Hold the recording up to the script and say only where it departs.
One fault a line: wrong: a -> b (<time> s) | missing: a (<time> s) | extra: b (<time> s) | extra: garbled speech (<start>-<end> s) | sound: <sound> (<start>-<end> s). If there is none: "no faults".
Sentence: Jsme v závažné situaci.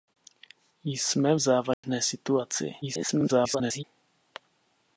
sound: dropout (1.7-1.8 s)
extra: garbled speech (2.8-3.8 s)